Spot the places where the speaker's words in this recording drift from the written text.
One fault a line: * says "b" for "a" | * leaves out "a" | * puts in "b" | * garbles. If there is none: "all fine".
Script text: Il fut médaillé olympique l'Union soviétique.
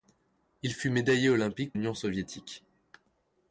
all fine